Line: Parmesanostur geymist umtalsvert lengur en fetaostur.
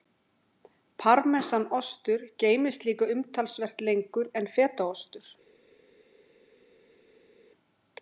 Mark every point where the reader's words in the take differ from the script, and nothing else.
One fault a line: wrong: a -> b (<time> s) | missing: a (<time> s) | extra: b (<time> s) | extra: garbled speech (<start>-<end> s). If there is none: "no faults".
extra: líka (2.9 s)